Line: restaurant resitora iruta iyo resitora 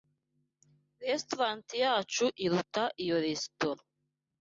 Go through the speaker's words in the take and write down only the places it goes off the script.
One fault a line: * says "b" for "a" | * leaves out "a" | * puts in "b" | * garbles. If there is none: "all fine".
* says "yacu" for "resitora"